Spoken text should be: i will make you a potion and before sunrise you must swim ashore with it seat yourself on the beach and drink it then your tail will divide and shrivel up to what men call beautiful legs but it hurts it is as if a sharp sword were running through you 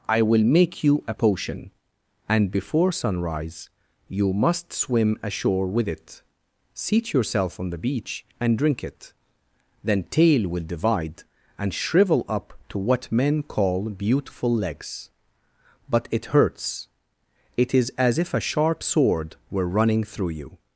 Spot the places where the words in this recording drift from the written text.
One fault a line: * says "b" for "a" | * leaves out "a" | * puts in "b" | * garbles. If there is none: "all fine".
* leaves out "your"